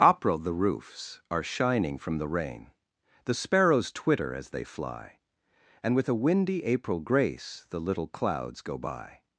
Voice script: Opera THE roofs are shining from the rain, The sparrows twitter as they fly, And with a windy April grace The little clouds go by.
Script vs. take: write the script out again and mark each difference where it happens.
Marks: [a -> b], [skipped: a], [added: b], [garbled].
Opera THE roofs are shining from the rain, The sparrows twitter as they fly, And with a windy April grace The little clouds go by.